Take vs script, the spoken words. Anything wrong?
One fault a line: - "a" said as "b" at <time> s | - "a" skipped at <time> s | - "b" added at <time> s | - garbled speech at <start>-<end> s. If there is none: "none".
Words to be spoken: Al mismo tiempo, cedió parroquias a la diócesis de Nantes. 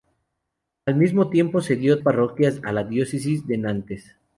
none